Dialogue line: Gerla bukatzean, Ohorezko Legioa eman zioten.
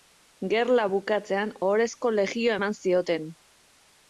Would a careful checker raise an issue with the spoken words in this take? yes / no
no